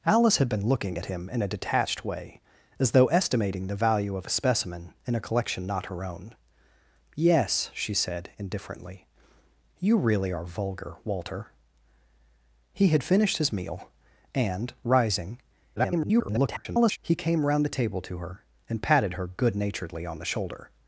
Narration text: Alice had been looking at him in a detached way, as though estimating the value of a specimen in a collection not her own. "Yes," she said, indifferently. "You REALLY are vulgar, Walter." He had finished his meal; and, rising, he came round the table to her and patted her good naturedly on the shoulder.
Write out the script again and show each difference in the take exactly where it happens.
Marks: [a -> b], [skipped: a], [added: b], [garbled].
Alice had been looking at him in a detached way, as though estimating the value of a specimen in a collection not her own. "Yes," she said, indifferently. "You REALLY are vulgar, Walter." He had finished his meal; and, rising, [garbled] he came round the table to her and patted her good naturedly on the shoulder.